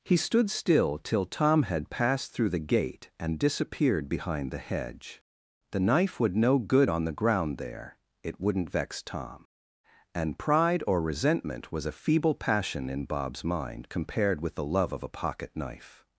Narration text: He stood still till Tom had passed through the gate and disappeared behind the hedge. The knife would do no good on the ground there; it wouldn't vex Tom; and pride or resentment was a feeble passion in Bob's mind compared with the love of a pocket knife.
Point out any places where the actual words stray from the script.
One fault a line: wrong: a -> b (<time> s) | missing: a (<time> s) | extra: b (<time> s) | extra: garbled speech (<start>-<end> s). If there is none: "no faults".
missing: do (6.4 s)